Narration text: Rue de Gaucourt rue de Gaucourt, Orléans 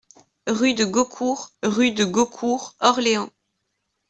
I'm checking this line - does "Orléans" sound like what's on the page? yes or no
yes